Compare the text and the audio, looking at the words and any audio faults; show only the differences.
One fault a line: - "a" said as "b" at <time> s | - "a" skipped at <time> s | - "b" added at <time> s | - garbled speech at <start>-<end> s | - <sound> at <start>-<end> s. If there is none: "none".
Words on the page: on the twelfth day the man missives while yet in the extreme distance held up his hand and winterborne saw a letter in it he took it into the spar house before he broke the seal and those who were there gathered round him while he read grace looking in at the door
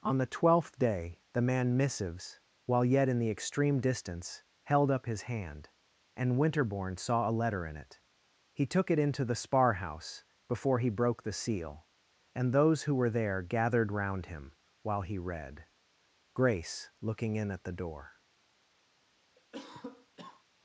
- cough at 19.4-20.4 s